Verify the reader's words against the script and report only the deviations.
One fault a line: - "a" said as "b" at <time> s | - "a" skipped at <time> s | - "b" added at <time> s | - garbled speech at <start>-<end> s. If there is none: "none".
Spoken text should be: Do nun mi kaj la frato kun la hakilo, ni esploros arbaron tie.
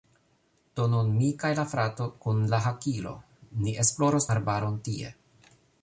none